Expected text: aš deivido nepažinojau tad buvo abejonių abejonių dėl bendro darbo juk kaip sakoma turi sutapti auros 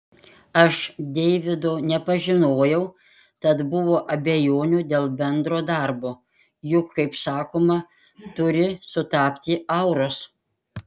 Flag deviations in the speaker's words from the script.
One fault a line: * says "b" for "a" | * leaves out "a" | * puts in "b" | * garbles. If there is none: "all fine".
* leaves out "abejonių"